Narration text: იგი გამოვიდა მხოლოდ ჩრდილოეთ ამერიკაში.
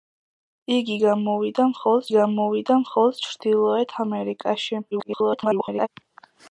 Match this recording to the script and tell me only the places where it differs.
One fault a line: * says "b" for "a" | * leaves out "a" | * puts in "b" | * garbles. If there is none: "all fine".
* puts in "გამოვიდა მხოლოდ"
* garbles